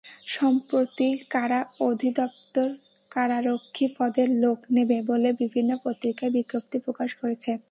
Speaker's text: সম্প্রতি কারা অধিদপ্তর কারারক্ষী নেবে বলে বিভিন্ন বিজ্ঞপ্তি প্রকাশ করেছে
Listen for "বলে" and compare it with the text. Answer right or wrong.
right